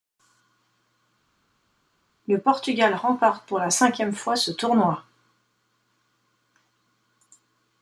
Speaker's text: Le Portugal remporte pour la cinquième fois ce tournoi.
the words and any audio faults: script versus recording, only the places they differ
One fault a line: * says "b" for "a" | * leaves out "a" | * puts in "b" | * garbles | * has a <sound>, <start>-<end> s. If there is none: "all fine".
all fine